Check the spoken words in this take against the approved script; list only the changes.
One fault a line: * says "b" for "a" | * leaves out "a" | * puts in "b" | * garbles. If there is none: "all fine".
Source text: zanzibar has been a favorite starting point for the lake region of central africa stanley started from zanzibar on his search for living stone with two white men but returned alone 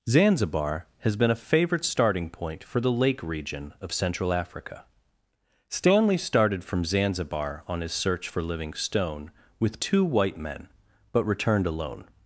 all fine